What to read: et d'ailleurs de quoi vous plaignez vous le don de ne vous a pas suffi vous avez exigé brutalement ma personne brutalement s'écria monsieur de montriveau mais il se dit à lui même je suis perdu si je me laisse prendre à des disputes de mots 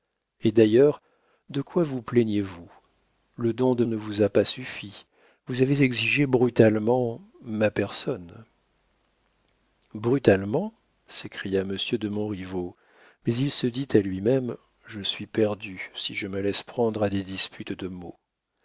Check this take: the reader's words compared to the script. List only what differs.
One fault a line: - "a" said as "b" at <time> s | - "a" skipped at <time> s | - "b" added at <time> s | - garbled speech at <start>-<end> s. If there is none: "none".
none